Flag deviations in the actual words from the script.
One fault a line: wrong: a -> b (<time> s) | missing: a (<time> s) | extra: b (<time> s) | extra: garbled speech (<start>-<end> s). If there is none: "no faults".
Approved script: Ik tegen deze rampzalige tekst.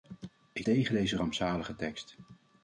no faults